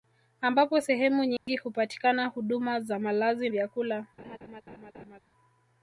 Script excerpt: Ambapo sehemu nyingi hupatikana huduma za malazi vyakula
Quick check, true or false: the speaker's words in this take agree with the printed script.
true